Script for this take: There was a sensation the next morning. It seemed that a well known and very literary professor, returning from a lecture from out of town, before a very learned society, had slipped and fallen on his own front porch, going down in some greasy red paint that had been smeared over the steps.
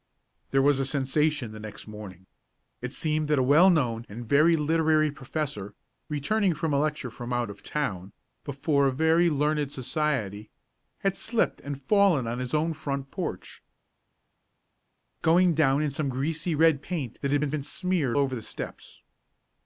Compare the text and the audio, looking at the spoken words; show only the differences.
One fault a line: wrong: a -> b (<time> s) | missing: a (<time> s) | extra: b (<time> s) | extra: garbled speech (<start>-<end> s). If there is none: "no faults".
extra: been (17.5 s)